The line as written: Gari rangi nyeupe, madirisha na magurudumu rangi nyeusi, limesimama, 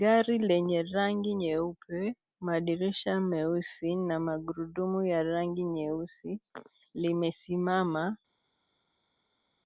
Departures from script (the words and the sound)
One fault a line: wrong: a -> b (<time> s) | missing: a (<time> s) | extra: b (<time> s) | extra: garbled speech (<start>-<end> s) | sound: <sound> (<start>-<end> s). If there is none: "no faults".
extra: lenye (0.5 s)
extra: meusi (3.2 s)
extra: ya (5.0 s)